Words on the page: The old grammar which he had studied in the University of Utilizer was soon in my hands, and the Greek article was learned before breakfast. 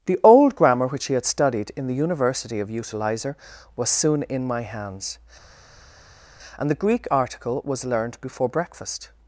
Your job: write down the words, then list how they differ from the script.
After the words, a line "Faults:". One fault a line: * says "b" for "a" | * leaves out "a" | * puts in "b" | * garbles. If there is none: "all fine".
The old grammar which he had studied in the University of Utilizer was soon in my hands, and the Greek article was learned before breakfast.
Faults:
all fine